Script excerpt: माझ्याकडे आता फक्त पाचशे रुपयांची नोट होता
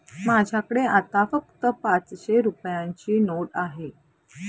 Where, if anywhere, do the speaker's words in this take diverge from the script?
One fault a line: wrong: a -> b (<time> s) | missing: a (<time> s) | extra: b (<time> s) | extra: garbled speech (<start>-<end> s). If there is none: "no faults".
wrong: होता -> आहे (3.6 s)